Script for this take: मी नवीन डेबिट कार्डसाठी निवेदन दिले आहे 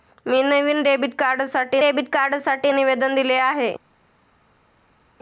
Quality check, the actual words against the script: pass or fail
fail